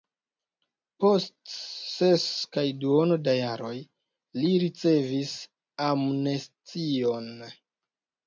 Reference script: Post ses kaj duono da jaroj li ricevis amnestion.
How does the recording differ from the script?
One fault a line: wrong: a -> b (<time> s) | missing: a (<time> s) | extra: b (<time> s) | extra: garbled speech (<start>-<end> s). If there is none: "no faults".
no faults